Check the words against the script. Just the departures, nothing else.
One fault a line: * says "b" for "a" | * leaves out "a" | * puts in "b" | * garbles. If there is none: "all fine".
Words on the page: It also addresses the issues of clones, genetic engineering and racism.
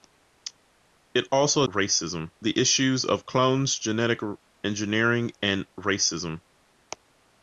* says "racism" for "addresses"